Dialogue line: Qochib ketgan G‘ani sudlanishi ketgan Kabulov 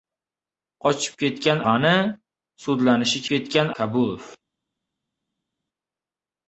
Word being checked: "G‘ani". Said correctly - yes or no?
yes